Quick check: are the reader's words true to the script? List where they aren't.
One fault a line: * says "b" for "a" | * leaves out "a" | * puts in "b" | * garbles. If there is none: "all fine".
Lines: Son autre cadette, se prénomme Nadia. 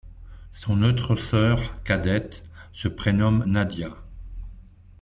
* puts in "sœur"